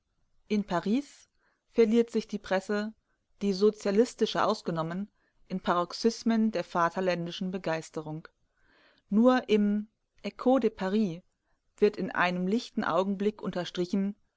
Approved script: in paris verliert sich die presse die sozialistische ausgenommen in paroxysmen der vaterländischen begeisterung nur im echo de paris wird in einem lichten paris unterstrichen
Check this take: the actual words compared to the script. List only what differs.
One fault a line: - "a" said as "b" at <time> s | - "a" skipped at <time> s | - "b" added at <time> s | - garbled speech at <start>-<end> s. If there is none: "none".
- "paris" said as "augenblick" at 12.8 s